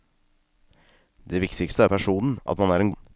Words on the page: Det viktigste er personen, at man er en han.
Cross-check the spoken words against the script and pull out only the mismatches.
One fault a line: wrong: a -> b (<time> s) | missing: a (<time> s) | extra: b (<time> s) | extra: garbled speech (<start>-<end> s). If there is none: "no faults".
no faults